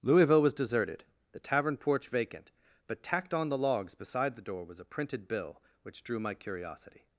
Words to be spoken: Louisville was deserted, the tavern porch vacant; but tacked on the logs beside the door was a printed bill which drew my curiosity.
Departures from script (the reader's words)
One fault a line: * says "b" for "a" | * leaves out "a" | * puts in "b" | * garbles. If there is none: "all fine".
all fine